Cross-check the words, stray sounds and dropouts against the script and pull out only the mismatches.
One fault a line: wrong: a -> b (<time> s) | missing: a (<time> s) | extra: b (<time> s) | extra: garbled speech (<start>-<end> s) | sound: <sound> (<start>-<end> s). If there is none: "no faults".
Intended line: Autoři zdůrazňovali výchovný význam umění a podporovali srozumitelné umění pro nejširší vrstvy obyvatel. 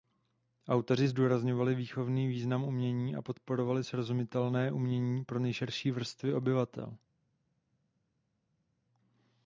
no faults